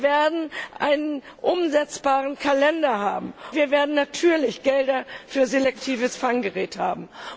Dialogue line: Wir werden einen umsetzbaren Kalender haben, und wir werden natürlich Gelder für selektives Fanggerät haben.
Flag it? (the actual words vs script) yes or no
yes